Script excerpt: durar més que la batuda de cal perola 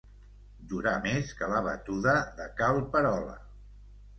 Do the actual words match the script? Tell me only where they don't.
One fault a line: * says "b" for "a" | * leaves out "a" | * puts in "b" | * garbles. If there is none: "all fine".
all fine